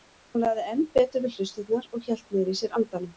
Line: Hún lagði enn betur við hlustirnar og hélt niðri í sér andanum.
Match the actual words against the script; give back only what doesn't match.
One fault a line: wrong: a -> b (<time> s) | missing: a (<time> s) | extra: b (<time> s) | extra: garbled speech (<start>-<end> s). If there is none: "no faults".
no faults